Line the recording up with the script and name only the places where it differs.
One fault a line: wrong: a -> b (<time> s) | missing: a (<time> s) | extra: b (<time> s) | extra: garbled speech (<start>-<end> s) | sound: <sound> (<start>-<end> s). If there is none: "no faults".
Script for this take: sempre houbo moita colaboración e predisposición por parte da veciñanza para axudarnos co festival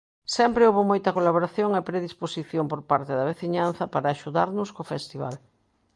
no faults